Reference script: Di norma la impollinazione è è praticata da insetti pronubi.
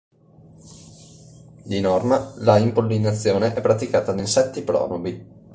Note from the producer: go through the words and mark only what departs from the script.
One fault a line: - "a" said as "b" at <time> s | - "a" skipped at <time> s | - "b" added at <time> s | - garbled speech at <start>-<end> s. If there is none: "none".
- "è" skipped at 3.6 s